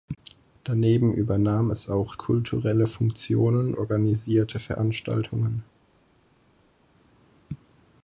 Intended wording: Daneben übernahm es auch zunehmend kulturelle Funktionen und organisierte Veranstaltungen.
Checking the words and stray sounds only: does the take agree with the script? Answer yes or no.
no